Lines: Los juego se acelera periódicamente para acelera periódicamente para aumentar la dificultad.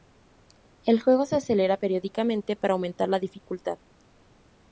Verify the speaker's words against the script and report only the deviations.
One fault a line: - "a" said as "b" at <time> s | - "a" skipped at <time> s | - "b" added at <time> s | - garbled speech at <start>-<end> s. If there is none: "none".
- "Los" said as "El" at 0.8 s
- "acelera periódicamente para" skipped at 2.7 s